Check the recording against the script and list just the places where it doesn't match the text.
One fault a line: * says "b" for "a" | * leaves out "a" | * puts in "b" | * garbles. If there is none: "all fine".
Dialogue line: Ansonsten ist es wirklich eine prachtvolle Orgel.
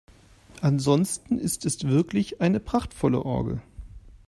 all fine